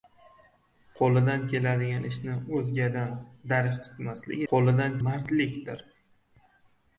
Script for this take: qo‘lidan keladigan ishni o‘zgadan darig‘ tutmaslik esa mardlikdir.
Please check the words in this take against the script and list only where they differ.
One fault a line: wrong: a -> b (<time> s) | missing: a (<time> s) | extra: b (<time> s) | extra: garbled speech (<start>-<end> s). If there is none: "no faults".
wrong: esa -> qo‘lidan (4.5 s)